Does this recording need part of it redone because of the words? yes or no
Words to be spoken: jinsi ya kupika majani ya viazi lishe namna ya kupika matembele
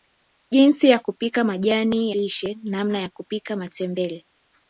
yes